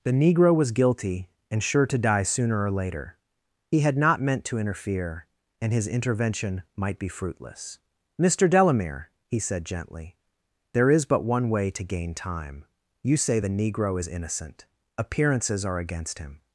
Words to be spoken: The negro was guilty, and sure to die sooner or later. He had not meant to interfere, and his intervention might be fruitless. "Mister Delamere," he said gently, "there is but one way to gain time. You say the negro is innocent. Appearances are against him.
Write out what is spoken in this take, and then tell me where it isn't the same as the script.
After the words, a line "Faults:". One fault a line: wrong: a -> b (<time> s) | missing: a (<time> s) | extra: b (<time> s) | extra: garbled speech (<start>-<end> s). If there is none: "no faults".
The negro was guilty, and sure to die sooner or later. He had not meant to interfere, and his intervention might be fruitless. "Mister Delamere," he said gently, "there is but one way to gain time. You say the negro is innocent. Appearances are against him.
Faults:
no faults